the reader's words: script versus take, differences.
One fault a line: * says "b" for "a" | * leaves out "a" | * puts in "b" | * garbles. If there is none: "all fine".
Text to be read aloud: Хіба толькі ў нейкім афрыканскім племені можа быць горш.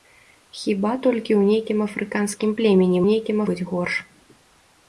* says "нейкім" for "можа"